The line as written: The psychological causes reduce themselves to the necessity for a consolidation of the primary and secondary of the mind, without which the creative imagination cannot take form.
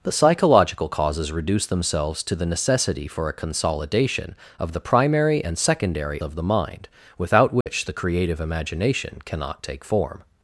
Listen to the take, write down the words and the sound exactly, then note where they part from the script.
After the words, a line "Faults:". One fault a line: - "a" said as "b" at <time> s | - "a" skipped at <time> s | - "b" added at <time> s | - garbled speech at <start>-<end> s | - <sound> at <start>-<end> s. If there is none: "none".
The psychological causes reduce themselves to the necessity for a consolidation of the primary and secondary of the mind, without which the creative imagination cannot take form.
Faults:
- dropout at 7.6-7.7 s